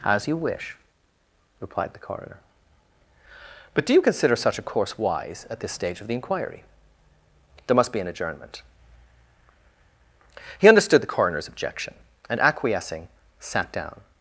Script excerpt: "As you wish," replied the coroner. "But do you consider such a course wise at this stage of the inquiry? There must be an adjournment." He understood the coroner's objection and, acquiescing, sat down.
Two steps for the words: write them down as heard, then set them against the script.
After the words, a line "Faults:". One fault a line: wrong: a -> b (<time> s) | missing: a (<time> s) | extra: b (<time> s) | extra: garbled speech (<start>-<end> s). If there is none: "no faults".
"As you wish," replied the coroner. "But do you consider such a course wise at this stage of the inquiry? There must be an adjournment." He understood the coroner's objection and, acquiescing, sat down.
Faults:
no faults